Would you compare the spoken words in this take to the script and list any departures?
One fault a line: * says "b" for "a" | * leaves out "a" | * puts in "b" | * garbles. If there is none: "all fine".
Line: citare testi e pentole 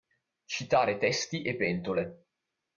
all fine